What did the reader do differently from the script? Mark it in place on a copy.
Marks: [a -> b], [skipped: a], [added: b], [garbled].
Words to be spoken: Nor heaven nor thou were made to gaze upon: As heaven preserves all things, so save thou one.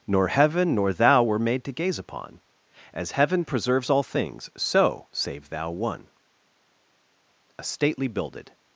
Nor heaven nor thou were made to gaze upon: As heaven preserves all things, so save thou one. [added: A stately builded]